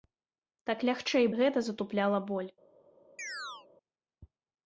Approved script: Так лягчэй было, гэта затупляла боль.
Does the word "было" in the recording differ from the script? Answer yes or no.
yes